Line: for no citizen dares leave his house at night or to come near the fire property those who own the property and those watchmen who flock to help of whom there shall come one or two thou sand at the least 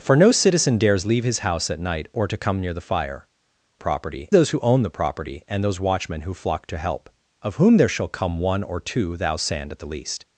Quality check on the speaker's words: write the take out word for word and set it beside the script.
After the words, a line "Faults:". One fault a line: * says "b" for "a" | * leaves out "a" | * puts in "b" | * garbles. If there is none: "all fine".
for no citizen dares leave his house at night or to come near the fire property those who own the property and those watchmen who flock to help of whom there shall come one or two thou sand at the least
Faults:
all fine